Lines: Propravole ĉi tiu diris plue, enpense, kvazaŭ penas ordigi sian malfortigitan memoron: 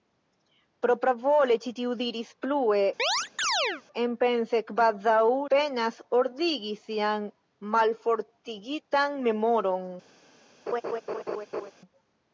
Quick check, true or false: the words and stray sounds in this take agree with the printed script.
false